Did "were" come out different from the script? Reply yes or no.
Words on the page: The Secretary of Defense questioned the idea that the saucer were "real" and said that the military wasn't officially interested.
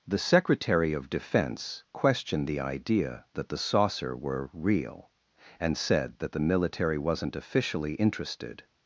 no